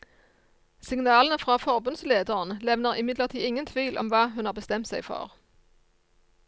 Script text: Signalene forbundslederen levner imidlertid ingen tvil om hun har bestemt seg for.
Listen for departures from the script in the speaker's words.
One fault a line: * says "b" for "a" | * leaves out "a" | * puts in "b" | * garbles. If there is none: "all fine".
* puts in "fra"
* puts in "hva"